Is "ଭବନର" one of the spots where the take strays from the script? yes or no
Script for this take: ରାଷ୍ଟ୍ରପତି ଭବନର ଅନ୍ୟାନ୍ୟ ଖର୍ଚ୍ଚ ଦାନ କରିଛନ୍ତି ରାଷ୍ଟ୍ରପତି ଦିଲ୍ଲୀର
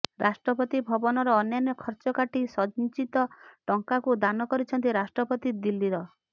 no